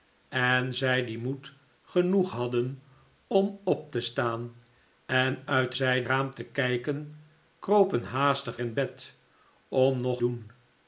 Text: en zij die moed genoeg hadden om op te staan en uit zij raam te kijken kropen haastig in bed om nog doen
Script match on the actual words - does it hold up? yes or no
yes